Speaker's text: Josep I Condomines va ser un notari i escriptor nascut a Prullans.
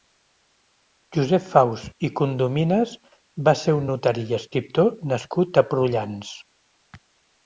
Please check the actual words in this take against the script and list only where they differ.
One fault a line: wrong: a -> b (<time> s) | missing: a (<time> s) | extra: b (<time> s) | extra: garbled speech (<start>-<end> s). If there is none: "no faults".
extra: Faus (1.5 s)